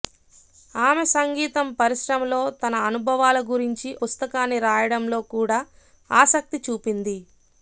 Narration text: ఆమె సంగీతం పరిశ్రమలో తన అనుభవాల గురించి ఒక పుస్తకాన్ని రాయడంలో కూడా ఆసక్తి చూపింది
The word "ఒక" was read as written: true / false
false